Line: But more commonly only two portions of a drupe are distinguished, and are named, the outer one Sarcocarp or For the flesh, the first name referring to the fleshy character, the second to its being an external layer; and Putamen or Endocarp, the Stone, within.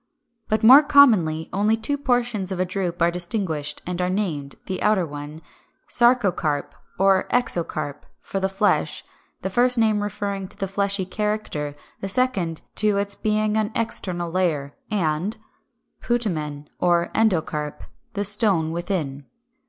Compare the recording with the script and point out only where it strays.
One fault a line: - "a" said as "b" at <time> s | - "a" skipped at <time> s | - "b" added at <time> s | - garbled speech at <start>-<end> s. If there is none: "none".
- "Exocarp" added at 7.3 s